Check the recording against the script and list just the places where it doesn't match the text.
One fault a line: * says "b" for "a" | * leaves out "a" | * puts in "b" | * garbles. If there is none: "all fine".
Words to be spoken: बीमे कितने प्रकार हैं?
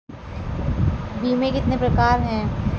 all fine